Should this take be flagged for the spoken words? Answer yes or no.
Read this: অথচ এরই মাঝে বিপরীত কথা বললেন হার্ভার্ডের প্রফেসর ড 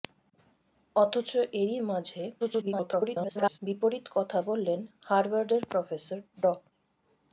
yes